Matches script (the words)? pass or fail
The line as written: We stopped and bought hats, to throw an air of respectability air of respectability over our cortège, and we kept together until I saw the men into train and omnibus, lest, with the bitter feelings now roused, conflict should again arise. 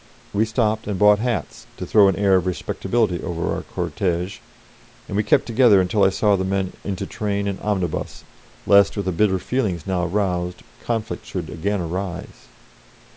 fail